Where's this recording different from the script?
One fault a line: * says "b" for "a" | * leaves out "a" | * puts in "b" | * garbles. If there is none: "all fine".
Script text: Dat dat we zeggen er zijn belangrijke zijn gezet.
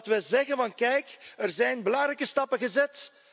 * leaves out "dat"
* puts in "kijk"
* says "stappen" for "zijn"